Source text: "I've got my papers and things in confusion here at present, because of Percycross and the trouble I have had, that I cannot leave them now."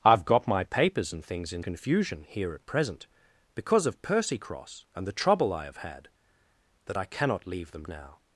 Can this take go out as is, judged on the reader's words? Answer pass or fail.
pass